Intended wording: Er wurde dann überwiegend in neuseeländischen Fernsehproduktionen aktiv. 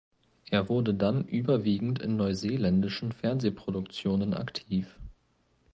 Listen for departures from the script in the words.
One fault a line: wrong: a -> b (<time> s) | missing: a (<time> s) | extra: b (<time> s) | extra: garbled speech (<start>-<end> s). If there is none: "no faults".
no faults